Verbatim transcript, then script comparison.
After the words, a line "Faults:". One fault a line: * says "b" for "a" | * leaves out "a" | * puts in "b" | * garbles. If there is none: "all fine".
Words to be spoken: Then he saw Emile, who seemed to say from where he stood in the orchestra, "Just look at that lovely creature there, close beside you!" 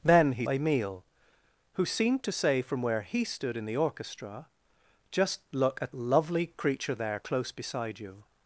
Then he Emile, who seemed to say from where he stood in the orchestra, "Just look at lovely creature there, close beside you!"
Faults:
* leaves out "saw"
* leaves out "that"